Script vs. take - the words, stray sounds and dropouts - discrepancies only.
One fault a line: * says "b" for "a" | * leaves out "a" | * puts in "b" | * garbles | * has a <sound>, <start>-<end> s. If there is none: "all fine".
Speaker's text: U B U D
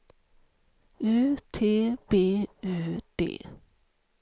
* puts in "T"